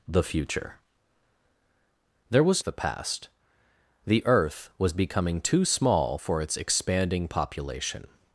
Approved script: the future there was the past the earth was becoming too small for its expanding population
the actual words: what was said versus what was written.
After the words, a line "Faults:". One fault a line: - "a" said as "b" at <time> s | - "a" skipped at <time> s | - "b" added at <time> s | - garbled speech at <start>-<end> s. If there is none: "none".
the future there was the past the earth was becoming too small for its expanding population
Faults:
none